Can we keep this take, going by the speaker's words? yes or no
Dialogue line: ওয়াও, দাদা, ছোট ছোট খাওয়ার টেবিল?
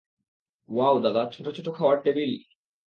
yes